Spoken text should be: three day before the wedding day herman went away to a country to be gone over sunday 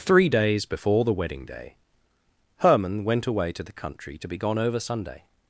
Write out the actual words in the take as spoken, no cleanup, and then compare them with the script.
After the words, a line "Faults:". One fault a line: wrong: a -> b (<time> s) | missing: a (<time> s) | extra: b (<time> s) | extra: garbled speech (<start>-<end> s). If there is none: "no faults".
three days before the wedding day herman went away to the country to be gone over sunday
Faults:
wrong: day -> days (0.3 s)
wrong: a -> the (3.6 s)